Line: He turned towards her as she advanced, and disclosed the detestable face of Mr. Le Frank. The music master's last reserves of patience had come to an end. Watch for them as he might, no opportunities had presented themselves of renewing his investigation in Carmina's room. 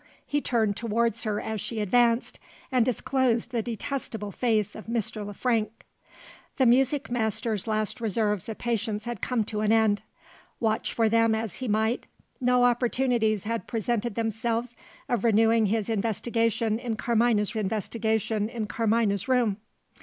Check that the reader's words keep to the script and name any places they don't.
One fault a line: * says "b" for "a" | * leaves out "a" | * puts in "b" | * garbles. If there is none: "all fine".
* puts in "investigation in Carmina's"